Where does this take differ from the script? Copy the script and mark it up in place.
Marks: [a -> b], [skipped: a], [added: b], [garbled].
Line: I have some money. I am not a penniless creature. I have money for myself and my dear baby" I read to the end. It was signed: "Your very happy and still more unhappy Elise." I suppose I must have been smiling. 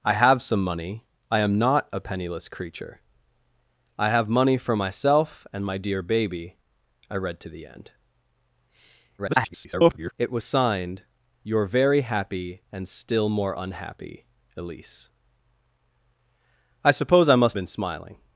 I have some money. I am not a penniless creature. I have money for myself and my dear baby" I read to the end. [garbled] It was signed: "Your very happy and still more unhappy Elise." I suppose I must [skipped: have] been smiling.